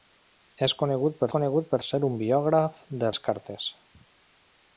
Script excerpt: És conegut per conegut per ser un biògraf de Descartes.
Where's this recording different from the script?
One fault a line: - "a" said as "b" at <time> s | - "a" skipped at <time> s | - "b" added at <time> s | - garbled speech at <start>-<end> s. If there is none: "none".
none